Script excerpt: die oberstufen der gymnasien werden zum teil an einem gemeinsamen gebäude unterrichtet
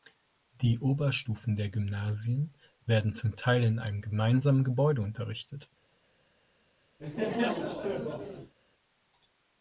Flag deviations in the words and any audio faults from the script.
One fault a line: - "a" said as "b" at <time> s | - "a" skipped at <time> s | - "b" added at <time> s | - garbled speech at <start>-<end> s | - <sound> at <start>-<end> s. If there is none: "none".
- "an" said as "in" at 3.6 s
- laugh at 7.0-8.5 s